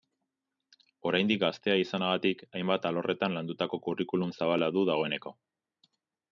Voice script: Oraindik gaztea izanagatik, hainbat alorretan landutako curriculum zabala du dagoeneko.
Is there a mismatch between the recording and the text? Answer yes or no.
no